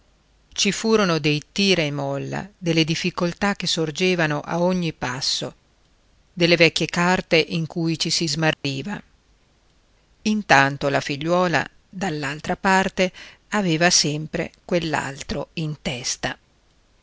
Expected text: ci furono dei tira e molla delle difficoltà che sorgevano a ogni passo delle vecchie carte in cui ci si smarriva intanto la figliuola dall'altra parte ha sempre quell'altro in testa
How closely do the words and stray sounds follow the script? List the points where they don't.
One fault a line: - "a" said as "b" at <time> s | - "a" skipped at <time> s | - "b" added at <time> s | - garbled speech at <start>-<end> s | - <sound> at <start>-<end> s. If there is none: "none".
- dropout at 8.5-8.6 s
- "ha" said as "aveva" at 13.5 s